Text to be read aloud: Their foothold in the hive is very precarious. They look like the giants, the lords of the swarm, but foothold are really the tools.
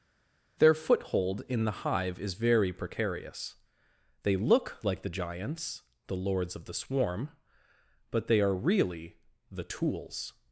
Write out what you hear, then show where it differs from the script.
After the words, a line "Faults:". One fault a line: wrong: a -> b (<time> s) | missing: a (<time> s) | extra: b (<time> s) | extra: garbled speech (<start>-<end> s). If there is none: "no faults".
Their foothold in the hive is very precarious. They look like the giants, the lords of the swarm, but they are really the tools.
Faults:
wrong: foothold -> they (8.3 s)